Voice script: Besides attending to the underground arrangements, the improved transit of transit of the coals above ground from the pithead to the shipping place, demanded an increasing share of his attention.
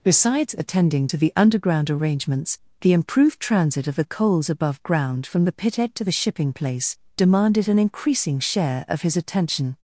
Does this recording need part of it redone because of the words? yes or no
yes